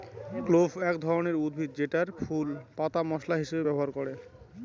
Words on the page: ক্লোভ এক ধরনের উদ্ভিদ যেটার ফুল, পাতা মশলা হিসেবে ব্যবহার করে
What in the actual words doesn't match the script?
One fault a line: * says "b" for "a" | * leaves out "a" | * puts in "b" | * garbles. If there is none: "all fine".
all fine